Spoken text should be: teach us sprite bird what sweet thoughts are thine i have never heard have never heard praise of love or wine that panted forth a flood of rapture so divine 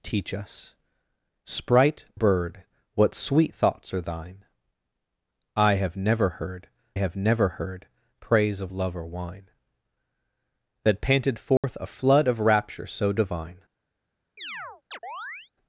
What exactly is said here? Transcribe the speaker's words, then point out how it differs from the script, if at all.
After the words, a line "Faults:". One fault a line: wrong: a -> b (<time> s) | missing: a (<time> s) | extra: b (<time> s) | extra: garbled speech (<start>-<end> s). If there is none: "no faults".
teach us sprite bird what sweet thoughts are thine i have never heard have never heard praise of love or wine that panted forth a flood of rapture so divine
Faults:
no faults